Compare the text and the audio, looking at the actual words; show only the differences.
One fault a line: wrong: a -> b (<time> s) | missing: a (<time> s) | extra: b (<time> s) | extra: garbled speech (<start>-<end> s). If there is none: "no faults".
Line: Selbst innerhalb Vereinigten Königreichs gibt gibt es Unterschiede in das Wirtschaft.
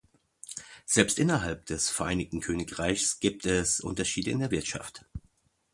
extra: des (1.7 s)
missing: gibt (3.4 s)
wrong: das -> der (4.4 s)